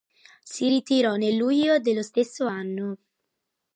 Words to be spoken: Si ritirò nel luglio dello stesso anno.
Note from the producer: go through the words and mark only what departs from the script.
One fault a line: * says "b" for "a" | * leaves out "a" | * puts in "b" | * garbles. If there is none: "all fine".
all fine